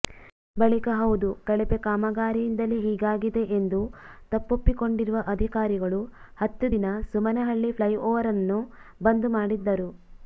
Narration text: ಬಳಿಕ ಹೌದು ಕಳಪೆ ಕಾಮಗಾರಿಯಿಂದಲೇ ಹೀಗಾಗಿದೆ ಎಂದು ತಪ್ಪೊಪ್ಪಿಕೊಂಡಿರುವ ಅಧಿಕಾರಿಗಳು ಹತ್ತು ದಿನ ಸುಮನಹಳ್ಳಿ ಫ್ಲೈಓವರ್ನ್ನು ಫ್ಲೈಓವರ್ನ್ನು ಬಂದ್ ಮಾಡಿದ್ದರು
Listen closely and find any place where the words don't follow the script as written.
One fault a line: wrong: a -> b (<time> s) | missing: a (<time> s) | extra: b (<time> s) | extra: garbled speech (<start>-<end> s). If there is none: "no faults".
missing: ಫ್ಲೈಓವರ್ನ್ನು (8.6 s)